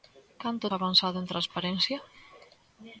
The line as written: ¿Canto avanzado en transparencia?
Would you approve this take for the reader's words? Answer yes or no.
yes